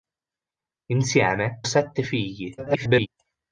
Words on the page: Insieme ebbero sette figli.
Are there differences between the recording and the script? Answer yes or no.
yes